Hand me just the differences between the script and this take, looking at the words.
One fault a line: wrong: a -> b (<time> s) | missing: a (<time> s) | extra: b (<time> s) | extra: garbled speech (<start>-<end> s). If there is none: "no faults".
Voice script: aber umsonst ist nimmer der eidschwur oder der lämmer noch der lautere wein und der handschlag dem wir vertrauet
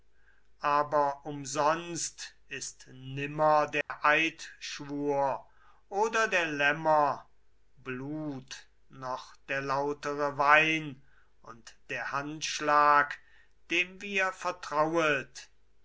extra: blut (7.8 s)